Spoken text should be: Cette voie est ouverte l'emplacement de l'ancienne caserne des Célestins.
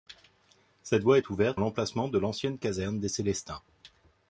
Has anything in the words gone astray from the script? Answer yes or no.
no